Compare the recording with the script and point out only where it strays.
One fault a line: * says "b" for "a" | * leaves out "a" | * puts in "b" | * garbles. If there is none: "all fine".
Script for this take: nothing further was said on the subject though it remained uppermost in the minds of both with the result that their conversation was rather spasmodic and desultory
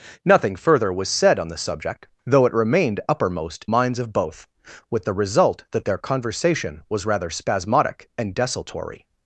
* leaves out "in the"